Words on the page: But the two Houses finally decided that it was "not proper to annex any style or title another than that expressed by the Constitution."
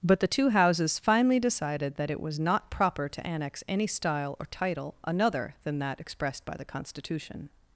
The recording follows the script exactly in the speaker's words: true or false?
true